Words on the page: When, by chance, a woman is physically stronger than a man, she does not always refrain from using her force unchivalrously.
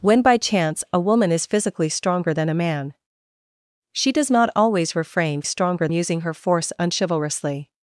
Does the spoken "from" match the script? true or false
false